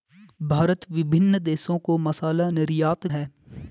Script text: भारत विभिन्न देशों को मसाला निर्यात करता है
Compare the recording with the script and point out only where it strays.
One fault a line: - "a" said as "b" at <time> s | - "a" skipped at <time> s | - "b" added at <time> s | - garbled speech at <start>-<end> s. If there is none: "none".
- "करता" skipped at 3.1 s